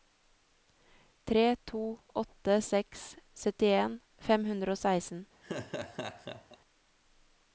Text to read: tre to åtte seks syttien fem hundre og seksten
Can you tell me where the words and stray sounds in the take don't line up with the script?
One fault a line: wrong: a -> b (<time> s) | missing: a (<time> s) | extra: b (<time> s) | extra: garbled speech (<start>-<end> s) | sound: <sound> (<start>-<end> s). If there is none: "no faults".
sound: laugh (5.4-6.6 s)